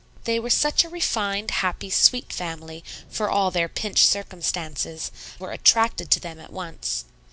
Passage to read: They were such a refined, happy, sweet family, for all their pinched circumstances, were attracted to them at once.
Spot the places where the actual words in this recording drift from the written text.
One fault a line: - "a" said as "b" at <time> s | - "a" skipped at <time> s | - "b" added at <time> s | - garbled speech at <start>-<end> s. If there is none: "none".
none